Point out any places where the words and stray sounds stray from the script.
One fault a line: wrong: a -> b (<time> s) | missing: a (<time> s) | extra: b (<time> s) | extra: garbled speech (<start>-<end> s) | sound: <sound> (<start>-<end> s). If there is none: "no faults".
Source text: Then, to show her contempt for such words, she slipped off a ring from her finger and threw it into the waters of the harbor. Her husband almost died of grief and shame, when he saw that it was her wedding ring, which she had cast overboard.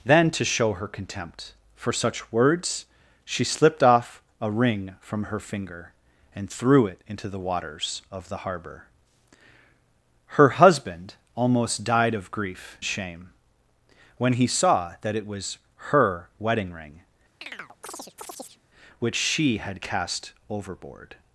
missing: and (12.8 s)
sound: chirp (17.4-18.6 s)